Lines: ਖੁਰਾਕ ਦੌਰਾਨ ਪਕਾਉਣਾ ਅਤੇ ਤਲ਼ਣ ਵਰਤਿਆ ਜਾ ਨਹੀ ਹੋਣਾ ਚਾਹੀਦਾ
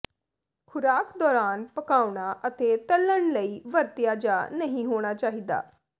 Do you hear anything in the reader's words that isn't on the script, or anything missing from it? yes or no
yes